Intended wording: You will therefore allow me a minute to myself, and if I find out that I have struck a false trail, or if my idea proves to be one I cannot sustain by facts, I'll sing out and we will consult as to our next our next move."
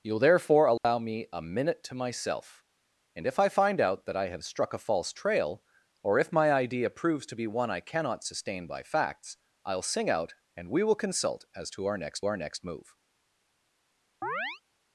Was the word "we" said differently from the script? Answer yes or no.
no